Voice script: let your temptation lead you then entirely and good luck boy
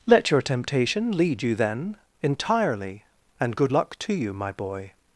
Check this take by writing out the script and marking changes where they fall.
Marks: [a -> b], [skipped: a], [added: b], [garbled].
let your temptation lead you then entirely and good luck [added: to you my] boy